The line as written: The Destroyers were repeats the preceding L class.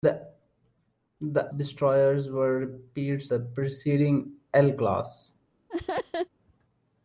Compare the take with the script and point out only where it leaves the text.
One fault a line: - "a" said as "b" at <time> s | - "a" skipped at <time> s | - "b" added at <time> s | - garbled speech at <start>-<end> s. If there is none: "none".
none